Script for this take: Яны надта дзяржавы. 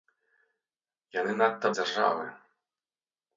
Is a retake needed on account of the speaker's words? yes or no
no